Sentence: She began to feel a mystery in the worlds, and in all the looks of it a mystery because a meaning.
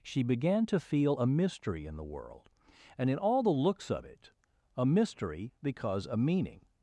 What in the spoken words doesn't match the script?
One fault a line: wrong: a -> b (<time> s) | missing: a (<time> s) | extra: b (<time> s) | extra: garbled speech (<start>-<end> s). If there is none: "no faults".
wrong: worlds -> world (2.1 s)